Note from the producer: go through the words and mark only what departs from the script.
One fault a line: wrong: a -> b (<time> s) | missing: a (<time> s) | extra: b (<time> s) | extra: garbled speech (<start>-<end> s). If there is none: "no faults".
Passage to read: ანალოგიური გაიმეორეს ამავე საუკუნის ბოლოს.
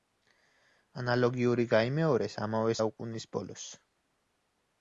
no faults